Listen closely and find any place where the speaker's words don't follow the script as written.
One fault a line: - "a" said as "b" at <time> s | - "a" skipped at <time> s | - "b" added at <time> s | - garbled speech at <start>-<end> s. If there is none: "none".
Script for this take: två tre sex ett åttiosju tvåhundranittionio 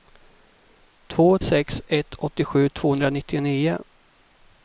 - "tre" skipped at 1.4 s